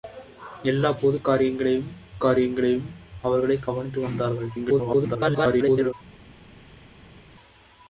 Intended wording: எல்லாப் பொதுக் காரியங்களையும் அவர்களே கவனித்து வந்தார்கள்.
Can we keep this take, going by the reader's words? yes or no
no